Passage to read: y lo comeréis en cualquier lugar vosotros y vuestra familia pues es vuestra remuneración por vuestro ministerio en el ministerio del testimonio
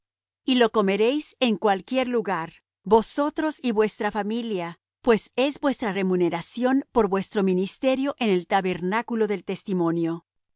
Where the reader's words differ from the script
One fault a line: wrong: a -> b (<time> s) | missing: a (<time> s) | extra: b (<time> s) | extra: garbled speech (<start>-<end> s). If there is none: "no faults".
wrong: ministerio -> tabernáculo (8.5 s)